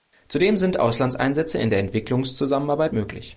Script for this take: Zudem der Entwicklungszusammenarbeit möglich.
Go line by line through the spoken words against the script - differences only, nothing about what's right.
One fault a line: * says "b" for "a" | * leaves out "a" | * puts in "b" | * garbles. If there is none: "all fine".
* puts in "sind Auslandseinsätze in"